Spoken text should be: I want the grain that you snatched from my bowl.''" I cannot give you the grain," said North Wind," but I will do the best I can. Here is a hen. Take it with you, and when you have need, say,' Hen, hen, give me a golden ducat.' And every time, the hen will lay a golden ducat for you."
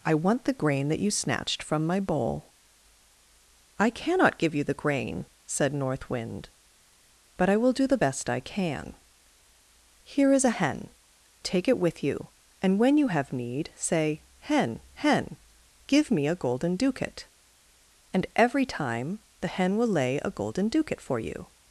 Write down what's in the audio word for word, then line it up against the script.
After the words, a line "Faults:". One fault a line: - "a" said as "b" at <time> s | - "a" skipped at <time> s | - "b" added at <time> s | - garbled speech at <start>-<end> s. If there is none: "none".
I want the grain that you snatched from my bowl.''" I cannot give you the grain," said North Wind," but I will do the best I can. Here is a hen. Take it with you, and when you have need, say,' Hen, hen, give me a golden ducat.' And every time, the hen will lay a golden ducat for you."
Faults:
none